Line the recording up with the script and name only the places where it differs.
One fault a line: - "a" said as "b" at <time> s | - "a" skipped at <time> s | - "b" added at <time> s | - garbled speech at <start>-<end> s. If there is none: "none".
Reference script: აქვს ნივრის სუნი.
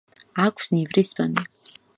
none